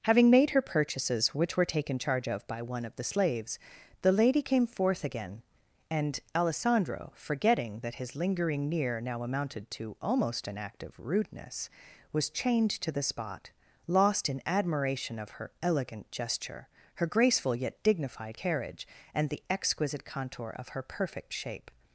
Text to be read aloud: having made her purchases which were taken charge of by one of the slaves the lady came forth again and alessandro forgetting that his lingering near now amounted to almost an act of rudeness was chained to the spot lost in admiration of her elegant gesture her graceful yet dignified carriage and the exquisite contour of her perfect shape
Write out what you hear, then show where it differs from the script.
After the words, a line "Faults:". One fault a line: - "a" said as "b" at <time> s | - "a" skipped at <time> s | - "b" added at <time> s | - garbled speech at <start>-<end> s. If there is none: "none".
having made her purchases which were taken charge of by one of the slaves the lady came forth again and alessandro forgetting that his lingering near now amounted to almost an act of rudeness was chained to the spot lost in admiration of her elegant gesture her graceful yet dignified carriage and the exquisite contour of her perfect shape
Faults:
none